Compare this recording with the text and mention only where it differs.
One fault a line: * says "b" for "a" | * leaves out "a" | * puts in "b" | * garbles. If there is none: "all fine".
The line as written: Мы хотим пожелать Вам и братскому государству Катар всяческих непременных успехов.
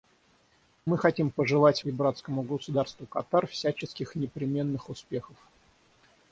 * leaves out "Вам"